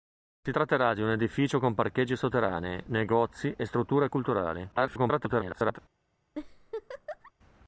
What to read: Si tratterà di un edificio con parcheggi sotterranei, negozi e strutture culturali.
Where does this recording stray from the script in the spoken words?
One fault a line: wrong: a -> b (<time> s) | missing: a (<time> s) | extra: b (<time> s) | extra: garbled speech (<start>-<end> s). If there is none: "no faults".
extra: garbled speech (4.7-5.8 s)